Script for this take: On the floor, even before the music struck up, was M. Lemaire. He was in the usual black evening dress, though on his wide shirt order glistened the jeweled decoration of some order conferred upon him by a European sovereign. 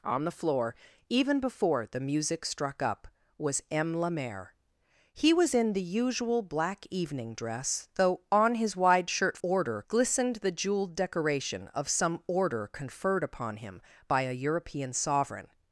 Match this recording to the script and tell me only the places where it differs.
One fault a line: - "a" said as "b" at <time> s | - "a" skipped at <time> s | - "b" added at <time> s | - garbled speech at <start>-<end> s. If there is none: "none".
none